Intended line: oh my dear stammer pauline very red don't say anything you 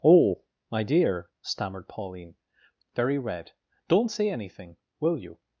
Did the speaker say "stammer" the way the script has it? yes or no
no